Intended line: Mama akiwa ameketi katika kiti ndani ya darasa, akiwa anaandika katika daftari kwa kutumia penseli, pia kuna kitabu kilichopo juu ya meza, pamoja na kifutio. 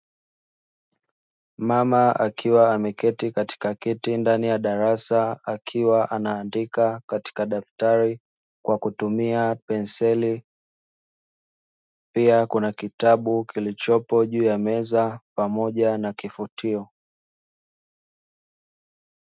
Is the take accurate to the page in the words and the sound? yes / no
yes